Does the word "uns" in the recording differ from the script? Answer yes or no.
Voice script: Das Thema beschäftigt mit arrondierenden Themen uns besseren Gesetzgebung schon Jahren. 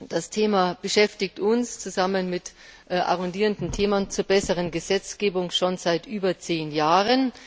yes